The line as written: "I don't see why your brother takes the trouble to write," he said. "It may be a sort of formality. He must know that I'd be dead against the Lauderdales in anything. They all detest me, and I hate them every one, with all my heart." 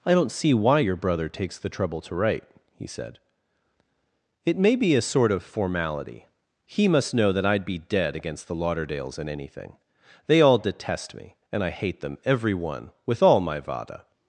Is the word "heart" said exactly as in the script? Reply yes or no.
no